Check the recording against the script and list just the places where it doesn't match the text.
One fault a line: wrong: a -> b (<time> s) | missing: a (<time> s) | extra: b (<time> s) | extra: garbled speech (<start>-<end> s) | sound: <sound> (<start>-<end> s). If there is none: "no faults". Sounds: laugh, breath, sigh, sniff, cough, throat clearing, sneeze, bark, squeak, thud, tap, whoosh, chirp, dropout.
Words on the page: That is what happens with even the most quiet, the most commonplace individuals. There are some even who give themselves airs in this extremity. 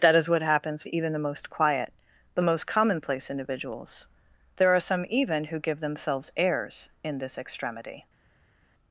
missing: with (0.8 s)